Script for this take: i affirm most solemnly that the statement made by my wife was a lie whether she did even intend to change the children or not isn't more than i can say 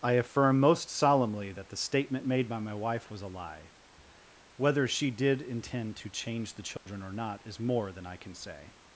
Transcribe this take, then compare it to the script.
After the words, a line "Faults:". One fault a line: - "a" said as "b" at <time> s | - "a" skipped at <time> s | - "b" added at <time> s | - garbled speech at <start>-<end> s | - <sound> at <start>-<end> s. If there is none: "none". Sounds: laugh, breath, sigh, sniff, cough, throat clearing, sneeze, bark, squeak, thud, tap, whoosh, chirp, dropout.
i affirm most solemnly that the statement made by my wife was a lie whether she did intend to change the children or not is more than i can say
Faults:
- "even" skipped at 5.4 s
- dropout at 6.8-6.9 s
- "isn't" said as "is" at 7.5 s